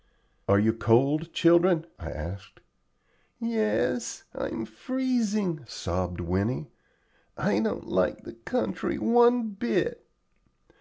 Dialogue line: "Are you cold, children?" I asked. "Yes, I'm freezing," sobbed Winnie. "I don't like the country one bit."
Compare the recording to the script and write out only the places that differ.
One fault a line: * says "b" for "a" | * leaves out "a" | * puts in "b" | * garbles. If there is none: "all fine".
all fine